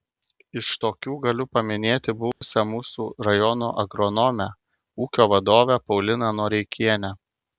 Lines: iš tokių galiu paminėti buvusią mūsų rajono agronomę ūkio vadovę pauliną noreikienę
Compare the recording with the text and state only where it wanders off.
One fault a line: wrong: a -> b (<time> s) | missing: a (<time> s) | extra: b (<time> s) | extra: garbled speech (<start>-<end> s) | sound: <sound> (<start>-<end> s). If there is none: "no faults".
sound: dropout (2.3-2.4 s)